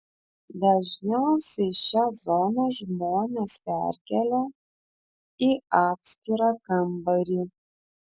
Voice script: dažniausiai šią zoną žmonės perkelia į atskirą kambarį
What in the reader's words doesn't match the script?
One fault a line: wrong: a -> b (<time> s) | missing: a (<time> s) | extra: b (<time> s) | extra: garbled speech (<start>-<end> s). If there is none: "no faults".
no faults